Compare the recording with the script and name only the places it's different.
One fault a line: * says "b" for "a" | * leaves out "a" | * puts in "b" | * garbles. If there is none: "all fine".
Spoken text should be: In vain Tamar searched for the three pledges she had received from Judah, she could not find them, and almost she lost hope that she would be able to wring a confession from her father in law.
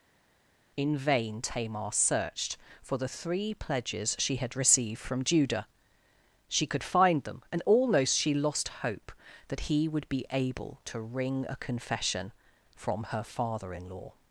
* leaves out "not"
* says "he" for "she"